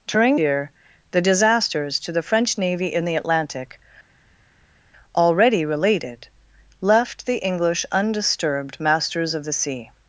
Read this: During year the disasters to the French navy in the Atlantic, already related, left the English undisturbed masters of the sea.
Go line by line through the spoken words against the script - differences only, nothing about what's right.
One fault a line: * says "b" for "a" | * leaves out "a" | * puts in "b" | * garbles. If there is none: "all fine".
all fine